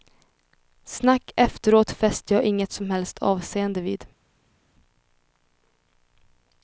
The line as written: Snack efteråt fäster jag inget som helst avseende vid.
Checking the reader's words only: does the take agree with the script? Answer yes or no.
yes